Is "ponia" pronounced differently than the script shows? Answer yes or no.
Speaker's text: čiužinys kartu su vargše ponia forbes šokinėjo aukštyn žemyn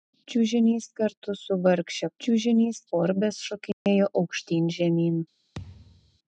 yes